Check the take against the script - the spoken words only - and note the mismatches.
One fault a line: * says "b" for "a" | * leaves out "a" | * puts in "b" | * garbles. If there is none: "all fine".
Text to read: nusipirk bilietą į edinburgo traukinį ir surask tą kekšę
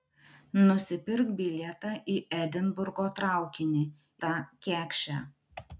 * leaves out "ir surask"